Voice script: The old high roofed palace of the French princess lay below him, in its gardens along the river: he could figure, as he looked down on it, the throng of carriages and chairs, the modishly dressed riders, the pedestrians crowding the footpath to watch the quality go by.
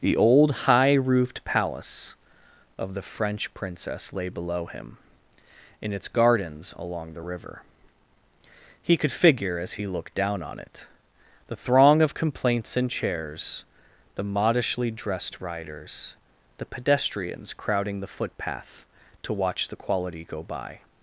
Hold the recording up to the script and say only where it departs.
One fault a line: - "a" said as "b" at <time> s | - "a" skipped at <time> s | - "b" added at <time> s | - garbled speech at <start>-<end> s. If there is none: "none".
- "carriages" said as "complaints" at 12.1 s